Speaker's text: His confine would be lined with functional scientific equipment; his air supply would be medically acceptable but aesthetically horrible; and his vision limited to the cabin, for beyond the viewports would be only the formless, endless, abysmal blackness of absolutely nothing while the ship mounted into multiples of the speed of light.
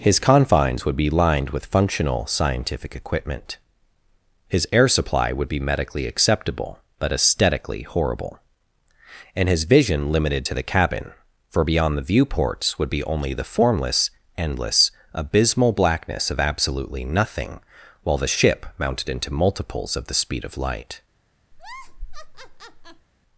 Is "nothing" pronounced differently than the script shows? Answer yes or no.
no